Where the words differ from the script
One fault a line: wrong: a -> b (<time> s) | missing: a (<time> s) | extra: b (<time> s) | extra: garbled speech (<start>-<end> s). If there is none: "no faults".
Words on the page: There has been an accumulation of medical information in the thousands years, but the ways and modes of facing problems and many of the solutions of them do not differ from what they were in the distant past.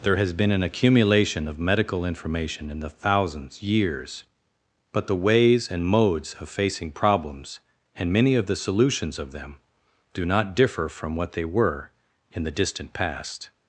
no faults